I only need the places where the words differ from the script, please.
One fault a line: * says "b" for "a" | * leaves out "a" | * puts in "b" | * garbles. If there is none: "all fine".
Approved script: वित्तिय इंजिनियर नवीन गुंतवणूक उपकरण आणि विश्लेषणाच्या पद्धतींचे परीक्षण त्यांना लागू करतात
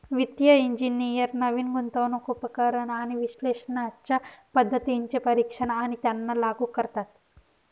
* puts in "आणि"